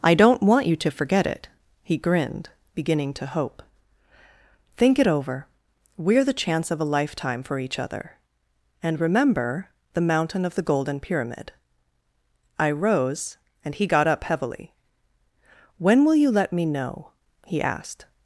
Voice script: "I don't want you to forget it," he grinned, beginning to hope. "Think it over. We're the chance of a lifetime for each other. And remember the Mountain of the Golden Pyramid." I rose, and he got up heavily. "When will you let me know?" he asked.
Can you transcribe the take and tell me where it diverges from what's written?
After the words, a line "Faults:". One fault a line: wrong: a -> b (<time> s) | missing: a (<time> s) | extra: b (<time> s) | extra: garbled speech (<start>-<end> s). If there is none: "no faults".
"I don't want you to forget it," he grinned, beginning to hope. "Think it over. We're the chance of a lifetime for each other. And remember the Mountain of the Golden Pyramid." I rose, and he got up heavily. "When will you let me know?" he asked.
Faults:
no faults